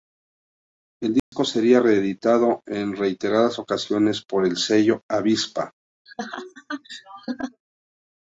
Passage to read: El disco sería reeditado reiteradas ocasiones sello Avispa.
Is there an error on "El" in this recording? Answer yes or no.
no